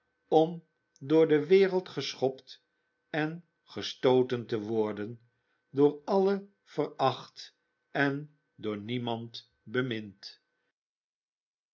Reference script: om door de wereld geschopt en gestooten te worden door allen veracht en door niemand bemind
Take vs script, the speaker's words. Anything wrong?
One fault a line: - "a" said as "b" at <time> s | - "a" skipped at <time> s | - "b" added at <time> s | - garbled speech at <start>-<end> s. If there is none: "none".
none